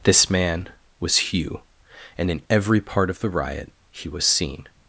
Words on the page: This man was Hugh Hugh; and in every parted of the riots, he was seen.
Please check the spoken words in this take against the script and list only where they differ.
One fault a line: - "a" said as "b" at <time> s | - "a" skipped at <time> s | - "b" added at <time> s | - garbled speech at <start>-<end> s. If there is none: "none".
- "Hugh" skipped at 1.6 s
- "parted" said as "part" at 2.8 s
- "riots" said as "riot" at 3.3 s